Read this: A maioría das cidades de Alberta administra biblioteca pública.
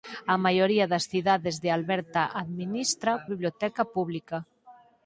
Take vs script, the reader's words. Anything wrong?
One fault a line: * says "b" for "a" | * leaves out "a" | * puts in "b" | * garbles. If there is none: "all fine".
all fine